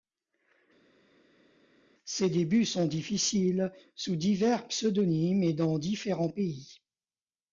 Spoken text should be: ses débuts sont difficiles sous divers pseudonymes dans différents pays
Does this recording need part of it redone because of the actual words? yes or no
yes